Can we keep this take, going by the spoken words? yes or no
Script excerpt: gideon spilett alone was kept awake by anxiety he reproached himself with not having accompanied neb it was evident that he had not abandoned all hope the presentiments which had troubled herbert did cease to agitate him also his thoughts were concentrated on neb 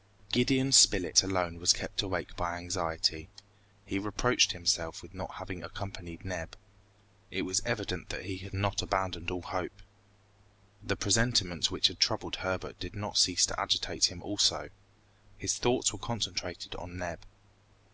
no